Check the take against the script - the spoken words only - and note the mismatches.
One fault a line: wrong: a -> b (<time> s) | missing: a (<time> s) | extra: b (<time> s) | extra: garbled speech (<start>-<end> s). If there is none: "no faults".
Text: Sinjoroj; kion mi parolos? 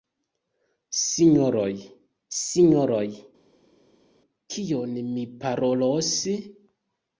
extra: sinjoroj (2.4 s)